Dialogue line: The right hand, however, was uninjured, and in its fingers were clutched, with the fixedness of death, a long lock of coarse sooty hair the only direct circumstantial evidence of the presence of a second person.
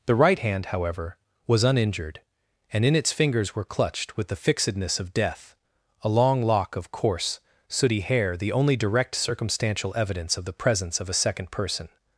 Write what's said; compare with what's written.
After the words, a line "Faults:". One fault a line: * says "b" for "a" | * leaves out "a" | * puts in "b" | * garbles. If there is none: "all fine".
The right hand, however, was uninjured, and in its fingers were clutched, with the fixedness of death, a long lock of coarse sooty hair the only direct circumstantial evidence of the presence of a second person.
Faults:
all fine